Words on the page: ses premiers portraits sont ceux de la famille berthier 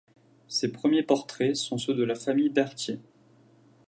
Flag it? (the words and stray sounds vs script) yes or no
no